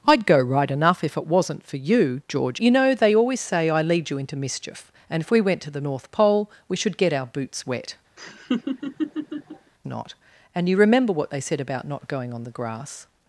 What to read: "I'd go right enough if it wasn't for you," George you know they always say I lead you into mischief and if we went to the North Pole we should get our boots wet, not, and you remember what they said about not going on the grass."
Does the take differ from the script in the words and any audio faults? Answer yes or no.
yes